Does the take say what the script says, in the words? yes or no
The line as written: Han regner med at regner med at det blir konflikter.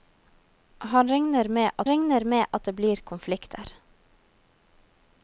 yes